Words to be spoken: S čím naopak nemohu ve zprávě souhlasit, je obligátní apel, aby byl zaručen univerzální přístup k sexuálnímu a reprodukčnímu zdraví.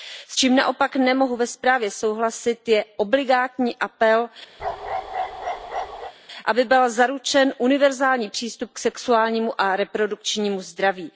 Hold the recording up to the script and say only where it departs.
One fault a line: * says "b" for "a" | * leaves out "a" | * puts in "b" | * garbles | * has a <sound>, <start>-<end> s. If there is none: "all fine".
* has a bark, 4.6-6.1 s